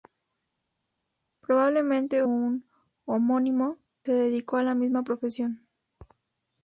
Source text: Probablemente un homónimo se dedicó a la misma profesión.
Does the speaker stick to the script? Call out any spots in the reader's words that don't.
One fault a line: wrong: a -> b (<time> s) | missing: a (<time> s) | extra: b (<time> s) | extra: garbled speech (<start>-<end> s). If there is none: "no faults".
no faults